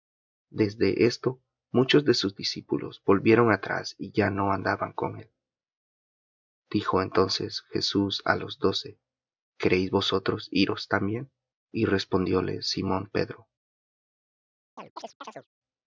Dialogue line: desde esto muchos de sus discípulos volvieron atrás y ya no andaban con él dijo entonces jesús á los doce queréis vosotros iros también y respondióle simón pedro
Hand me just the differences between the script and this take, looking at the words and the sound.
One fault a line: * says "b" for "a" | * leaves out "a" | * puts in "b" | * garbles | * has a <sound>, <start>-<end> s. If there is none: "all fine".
* has a chirp, 14.8-15.5 s